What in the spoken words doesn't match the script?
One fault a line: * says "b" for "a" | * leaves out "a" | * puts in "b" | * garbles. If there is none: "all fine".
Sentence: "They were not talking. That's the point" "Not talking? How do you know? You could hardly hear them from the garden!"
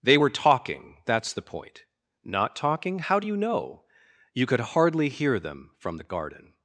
* leaves out "not"